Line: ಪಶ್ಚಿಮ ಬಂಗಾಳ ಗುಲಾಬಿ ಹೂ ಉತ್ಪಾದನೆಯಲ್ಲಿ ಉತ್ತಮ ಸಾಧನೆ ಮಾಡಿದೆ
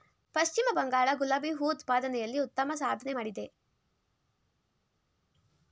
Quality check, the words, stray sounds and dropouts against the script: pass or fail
pass